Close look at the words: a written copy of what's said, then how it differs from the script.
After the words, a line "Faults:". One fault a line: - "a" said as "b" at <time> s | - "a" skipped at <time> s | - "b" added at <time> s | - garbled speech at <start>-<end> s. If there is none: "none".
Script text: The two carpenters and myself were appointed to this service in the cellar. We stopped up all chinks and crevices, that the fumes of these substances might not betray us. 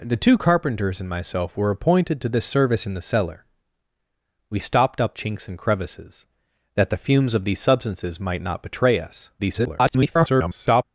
The two carpenters and myself were appointed to this service in the cellar. We stopped up chinks and crevices, that the fumes of these substances might not betray us. [garbled]
Faults:
- "all" skipped at 5.2 s
- garbled speech at 9.4-10.8 s